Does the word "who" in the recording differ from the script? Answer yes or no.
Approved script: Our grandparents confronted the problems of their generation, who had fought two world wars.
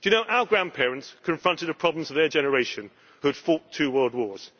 no